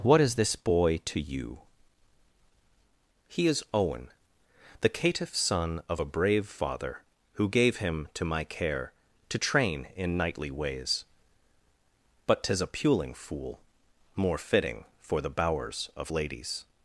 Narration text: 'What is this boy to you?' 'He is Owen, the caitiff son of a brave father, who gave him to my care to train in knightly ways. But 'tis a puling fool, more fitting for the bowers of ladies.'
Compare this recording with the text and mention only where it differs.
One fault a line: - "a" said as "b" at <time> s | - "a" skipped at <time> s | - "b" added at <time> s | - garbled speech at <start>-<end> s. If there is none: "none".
none